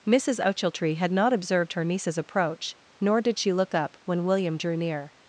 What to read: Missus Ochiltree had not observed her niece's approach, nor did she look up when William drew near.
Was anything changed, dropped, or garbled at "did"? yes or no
no